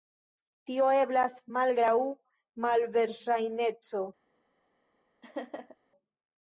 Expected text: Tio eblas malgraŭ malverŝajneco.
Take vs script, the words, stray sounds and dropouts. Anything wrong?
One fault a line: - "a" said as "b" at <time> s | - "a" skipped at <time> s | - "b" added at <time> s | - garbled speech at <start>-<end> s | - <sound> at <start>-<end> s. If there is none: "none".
- laugh at 5.2-5.8 s